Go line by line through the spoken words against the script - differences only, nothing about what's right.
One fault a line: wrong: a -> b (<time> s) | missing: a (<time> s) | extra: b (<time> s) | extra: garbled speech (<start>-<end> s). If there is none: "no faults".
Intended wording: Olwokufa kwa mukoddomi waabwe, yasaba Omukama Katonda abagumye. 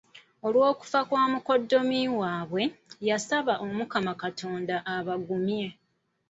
no faults